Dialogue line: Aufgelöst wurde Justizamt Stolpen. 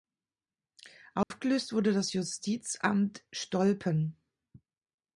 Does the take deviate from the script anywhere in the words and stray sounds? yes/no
yes